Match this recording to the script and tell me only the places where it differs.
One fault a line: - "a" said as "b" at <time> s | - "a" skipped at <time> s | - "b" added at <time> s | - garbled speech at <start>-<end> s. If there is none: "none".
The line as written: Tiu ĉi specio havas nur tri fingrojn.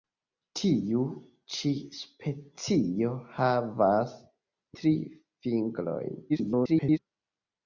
- "nur" skipped at 4.2 s
- garbled speech at 6.3-7.0 s